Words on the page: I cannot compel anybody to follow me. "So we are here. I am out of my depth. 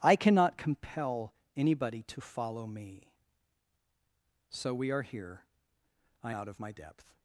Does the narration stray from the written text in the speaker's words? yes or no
yes